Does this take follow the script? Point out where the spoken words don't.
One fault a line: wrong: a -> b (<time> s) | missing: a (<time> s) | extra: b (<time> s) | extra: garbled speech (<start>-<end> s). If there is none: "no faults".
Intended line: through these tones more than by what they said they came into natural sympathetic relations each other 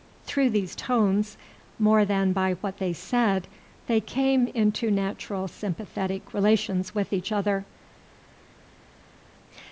extra: with (6.9 s)